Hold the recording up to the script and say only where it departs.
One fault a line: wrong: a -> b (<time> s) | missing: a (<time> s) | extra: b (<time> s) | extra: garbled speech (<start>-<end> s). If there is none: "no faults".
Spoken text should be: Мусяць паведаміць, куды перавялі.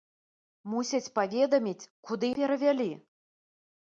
no faults